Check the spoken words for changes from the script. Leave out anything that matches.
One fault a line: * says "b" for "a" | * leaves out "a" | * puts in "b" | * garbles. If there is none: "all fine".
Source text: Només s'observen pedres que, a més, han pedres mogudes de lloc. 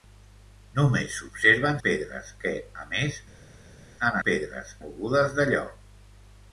all fine